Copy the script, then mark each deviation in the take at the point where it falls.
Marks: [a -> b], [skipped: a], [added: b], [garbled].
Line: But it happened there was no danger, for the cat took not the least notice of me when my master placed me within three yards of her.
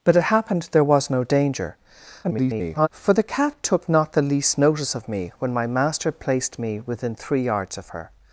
But it happened there was no danger, [garbled] for the cat took not the least notice of me when my master placed me within three yards of her.